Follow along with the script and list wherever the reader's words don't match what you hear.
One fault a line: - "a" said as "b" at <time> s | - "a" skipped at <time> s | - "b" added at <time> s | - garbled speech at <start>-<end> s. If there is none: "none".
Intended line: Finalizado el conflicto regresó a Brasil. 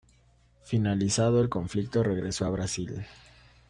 none